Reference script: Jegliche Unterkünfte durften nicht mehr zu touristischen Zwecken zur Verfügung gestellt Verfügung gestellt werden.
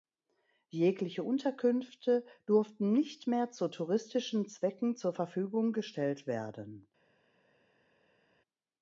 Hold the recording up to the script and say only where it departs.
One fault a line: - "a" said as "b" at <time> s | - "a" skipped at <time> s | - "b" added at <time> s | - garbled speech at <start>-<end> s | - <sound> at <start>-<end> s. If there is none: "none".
- "Verfügung gestellt" skipped at 6.3 s